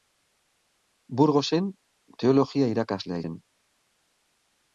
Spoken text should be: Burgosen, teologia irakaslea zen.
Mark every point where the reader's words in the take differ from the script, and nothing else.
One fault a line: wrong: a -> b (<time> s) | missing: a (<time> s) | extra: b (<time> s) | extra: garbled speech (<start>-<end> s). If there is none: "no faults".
no faults